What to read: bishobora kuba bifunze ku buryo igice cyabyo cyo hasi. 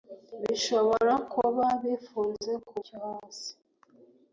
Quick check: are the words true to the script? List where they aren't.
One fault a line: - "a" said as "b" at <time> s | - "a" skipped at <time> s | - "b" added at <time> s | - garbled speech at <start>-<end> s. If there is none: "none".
- "buryo igice cyabyo" skipped at 2.8 s